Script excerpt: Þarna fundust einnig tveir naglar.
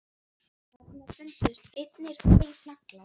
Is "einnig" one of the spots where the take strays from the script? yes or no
no